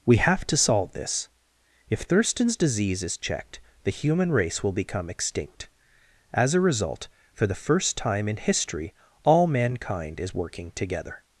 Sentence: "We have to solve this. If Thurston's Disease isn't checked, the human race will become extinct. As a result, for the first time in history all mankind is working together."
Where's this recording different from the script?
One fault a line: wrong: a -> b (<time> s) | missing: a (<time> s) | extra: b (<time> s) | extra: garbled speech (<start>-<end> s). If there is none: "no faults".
wrong: isn't -> is (3.0 s)